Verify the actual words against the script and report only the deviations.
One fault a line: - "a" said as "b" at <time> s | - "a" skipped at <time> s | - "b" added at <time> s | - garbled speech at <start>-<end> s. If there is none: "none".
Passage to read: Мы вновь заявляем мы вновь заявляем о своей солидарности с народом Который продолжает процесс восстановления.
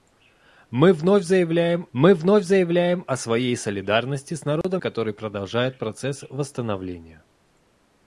none